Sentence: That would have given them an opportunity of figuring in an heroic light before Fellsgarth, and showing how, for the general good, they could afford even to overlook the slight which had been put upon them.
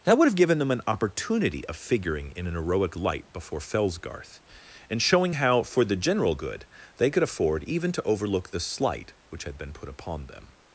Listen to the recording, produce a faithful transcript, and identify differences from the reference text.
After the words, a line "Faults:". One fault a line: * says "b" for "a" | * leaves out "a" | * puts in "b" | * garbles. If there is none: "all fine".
That would have given them an opportunity of figuring in an heroic light before Fellsgarth, and showing how, for the general good, they could afford even to overlook the slight which had been put upon them.
Faults:
all fine